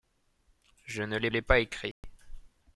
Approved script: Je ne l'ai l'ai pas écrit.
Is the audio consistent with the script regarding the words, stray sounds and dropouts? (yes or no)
no